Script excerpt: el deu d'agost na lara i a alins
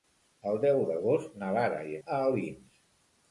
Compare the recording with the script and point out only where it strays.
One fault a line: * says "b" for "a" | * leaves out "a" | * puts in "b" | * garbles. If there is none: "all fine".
all fine